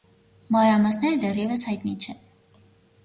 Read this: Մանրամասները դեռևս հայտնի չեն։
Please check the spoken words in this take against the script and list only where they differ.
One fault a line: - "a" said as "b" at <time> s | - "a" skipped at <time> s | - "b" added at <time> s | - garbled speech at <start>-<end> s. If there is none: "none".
none